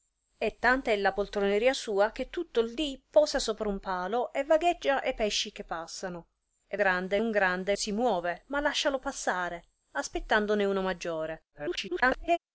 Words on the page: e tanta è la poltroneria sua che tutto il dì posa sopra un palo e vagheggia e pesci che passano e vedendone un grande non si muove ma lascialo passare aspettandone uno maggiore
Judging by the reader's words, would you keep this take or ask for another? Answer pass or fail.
fail